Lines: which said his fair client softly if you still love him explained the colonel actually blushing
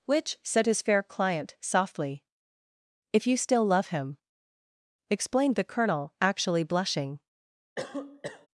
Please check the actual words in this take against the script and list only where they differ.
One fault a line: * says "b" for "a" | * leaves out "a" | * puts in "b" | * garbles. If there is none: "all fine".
all fine